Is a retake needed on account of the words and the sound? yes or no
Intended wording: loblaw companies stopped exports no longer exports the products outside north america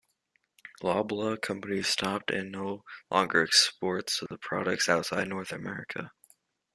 yes